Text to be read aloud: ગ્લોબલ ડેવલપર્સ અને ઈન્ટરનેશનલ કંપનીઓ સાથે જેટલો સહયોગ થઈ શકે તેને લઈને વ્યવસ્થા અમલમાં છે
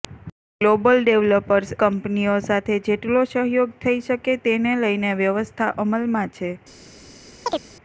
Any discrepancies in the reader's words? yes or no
yes